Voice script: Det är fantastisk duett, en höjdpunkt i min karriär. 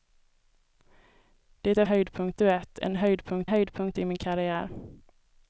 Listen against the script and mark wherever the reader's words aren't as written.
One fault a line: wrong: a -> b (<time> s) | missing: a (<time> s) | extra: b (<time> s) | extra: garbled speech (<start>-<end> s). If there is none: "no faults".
wrong: fantastisk -> höjdpunkt (1.8 s)
extra: höjdpunkt (3.4 s)